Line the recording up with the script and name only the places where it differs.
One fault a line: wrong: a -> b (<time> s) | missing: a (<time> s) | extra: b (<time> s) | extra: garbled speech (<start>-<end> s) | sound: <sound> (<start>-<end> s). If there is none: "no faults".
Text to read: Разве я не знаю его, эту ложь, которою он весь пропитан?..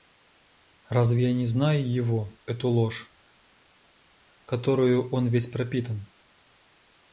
no faults